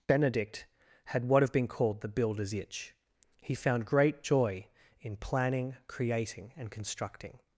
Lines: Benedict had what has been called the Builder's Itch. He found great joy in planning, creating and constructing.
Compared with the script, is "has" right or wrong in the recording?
wrong